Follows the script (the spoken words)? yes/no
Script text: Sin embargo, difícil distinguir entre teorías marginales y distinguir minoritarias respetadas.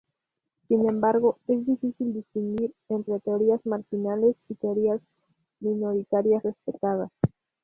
no